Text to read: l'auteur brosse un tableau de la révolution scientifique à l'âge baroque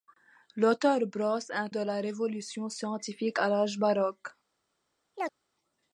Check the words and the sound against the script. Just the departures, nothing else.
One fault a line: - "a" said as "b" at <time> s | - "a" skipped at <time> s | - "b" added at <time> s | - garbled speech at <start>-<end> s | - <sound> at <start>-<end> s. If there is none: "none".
- "tableau" skipped at 1.7 s
- chirp at 5.1-5.4 s